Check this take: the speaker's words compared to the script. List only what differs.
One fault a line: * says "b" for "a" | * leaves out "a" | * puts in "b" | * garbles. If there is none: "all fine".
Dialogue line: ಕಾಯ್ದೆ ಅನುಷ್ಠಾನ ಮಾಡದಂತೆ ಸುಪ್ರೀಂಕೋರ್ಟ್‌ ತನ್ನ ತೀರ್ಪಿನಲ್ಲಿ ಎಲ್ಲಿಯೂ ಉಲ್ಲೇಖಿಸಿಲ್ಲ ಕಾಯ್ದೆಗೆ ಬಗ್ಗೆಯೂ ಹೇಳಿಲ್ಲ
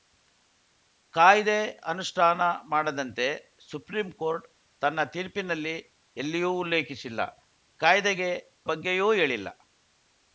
all fine